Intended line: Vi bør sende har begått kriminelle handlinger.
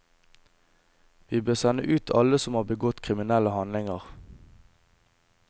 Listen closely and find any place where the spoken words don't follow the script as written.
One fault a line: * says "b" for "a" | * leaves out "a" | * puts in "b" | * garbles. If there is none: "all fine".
* puts in "ut alle som"